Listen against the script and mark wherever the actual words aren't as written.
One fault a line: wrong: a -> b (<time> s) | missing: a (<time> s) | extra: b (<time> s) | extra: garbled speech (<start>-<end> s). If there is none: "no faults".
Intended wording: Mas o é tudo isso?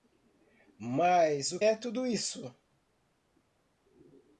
no faults